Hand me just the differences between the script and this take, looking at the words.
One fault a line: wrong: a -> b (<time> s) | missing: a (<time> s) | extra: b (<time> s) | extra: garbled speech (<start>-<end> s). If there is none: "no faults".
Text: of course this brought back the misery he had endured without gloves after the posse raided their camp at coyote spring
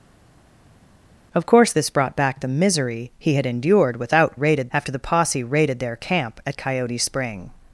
wrong: gloves -> raided (4.3 s)